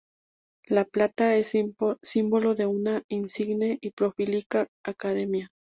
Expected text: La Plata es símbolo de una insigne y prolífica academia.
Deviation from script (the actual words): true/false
false